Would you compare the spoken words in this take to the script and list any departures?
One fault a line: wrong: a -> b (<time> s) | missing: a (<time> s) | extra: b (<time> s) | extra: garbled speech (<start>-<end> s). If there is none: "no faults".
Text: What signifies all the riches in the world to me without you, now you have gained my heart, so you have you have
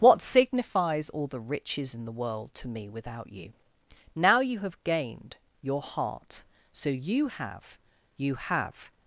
wrong: my -> your (5.6 s)